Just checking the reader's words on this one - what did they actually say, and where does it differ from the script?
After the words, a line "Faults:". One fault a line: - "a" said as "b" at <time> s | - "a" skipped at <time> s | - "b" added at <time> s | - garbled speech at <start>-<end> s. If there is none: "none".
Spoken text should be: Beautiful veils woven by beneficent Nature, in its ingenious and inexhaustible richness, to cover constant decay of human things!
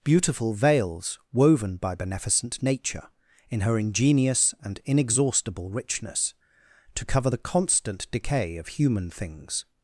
Beautiful veils woven by beneficent Nature, in her ingenious and inexhaustible richness, to cover the constant decay of human things!
Faults:
- "its" said as "her" at 3.6 s
- "the" added at 7.3 s